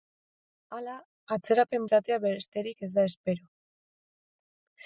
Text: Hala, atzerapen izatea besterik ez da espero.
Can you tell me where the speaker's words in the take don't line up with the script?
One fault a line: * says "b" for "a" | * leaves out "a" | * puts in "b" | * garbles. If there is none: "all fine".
all fine